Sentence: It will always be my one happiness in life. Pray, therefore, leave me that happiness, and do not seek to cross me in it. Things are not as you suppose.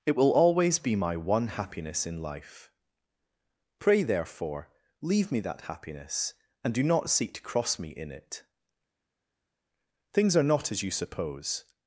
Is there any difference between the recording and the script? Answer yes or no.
no